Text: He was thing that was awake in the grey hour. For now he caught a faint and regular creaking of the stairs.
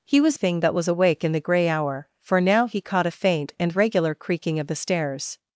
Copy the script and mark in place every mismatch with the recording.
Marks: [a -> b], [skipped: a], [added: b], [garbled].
He was thing that was awake in the grey hour. For now he caught a faint and regular creaking of the stairs.